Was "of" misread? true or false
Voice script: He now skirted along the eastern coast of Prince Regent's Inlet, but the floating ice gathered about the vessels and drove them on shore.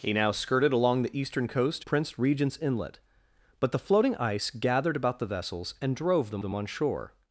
true